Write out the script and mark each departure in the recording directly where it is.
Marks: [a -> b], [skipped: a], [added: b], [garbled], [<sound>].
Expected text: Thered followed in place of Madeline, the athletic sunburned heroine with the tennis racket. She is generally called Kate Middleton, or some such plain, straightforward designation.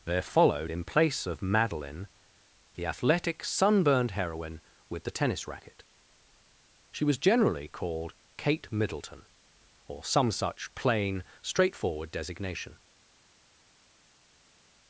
[Thered -> There] followed in place of Madeline, the athletic sunburned heroine with the tennis racket. She [is -> was] generally called Kate Middleton, or some such plain, straightforward designation.